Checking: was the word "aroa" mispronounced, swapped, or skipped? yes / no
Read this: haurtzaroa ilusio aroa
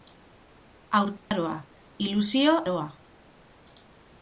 no